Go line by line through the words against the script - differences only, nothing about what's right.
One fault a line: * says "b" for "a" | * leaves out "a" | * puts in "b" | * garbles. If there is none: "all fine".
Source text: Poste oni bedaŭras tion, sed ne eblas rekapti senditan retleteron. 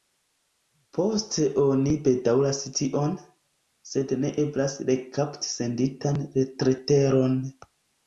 all fine